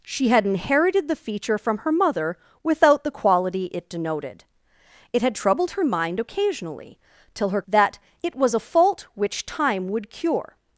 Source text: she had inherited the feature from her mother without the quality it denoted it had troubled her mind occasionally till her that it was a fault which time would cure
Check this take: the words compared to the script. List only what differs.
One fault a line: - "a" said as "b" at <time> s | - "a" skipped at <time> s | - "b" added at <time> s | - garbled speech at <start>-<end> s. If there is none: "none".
none